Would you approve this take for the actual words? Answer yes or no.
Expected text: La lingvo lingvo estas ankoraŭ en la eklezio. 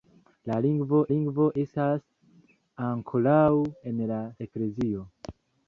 yes